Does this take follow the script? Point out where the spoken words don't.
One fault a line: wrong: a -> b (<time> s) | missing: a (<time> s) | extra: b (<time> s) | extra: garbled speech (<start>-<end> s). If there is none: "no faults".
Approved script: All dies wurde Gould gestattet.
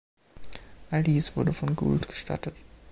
extra: von (1.5 s)